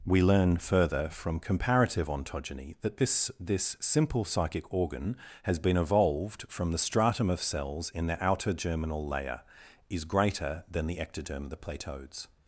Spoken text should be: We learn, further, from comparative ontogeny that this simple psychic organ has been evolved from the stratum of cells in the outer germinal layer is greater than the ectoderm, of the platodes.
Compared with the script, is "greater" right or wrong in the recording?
right